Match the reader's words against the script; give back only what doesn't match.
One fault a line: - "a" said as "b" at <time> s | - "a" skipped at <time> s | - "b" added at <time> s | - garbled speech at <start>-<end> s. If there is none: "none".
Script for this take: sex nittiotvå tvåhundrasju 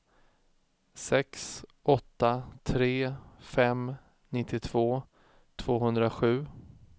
- "åtta tre fem" added at 1.8 s